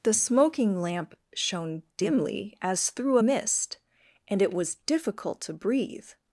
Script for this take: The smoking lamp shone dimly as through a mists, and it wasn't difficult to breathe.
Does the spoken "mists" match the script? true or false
false